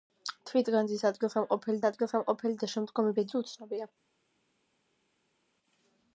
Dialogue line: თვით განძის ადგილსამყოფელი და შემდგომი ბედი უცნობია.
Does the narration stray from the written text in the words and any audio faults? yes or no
yes